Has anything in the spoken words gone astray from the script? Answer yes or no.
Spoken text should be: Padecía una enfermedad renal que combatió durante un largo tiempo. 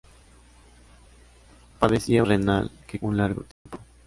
yes